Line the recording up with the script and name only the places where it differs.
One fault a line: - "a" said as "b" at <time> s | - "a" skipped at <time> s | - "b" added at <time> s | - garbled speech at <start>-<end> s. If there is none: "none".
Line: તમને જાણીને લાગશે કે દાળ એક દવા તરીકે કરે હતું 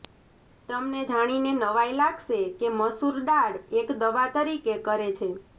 - "નવાઈ" added at 1.5 s
- "મસૂર" added at 2.8 s
- "હતું" said as "છે" at 5.1 s